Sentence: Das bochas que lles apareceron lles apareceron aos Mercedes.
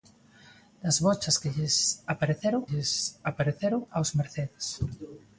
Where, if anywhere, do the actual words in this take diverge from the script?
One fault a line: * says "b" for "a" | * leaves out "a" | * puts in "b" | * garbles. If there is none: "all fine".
all fine